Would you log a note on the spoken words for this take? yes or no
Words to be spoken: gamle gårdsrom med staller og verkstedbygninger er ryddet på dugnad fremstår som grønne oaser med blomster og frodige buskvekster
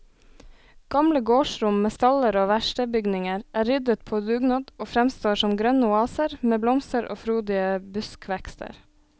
yes